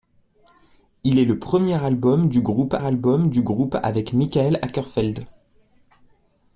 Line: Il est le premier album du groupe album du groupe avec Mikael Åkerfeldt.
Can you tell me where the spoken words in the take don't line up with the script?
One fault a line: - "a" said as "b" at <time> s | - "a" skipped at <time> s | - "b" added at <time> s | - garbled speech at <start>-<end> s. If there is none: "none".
none